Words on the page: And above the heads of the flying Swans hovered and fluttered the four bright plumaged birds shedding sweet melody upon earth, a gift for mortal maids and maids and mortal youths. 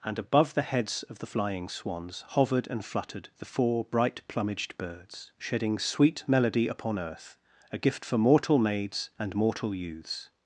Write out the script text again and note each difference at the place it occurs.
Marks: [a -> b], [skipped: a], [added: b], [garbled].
And above the heads of the flying Swans hovered and fluttered the four bright plumaged birds shedding sweet melody upon earth, a gift for mortal maids and [skipped: maids and] mortal youths.